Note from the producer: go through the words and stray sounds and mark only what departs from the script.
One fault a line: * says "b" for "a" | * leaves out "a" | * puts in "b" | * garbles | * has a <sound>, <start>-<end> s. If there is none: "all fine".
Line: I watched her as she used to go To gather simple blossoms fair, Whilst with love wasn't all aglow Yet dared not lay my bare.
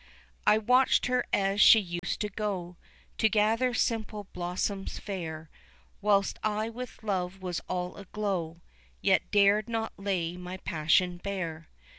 * has a dropout, 2.0-2.0 s
* puts in "I"
* says "was" for "wasn't"
* puts in "passion"